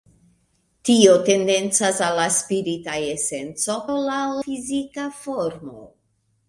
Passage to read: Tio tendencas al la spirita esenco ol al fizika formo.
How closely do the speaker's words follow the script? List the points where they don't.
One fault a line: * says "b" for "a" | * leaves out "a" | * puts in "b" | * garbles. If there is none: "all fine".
all fine